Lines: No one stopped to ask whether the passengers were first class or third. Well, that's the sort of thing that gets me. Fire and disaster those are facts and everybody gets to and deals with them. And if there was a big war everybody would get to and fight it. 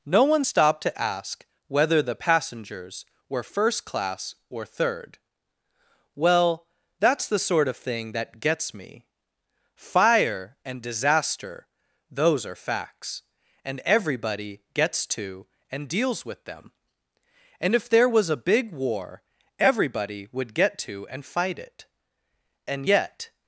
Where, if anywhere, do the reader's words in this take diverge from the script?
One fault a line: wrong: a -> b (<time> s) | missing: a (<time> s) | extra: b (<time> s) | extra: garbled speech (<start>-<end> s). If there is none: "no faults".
extra: And yet (22.7 s)